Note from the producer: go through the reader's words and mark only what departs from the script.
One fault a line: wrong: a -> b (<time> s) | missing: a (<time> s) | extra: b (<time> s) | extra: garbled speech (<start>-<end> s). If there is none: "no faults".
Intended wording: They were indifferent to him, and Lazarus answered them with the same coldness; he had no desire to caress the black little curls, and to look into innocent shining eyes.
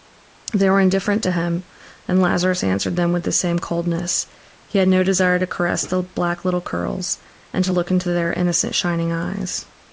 extra: their (8.1 s)